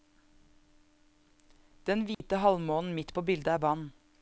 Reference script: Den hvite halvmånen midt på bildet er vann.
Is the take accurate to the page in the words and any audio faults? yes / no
no